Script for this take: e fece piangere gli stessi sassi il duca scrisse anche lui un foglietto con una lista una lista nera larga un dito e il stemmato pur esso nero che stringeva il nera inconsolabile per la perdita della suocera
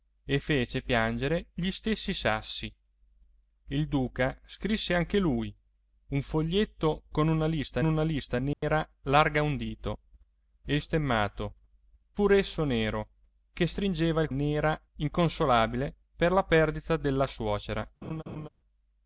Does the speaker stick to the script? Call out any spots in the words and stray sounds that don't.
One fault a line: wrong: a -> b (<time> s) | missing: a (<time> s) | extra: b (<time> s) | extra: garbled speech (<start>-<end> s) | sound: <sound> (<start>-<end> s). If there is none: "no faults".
sound: dropout (8.5-8.6 s)
sound: laugh (18.0-18.5 s)